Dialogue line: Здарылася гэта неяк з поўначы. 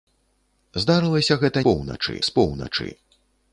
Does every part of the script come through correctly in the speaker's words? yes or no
no